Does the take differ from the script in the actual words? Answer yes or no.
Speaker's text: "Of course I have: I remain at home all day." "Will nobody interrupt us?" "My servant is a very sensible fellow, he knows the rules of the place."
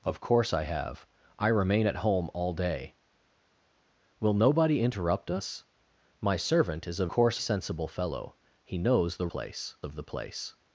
yes